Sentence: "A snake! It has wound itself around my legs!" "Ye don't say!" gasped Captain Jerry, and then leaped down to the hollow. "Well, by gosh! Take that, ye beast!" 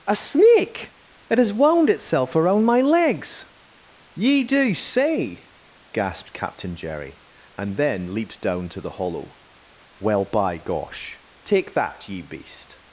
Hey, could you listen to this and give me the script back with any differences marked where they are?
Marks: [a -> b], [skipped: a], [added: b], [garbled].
"A snake! It has wound itself around my legs!" "Ye [don't -> do] say!" gasped Captain Jerry, and then leaped down to the hollow. "Well, by gosh! Take that, ye beast!"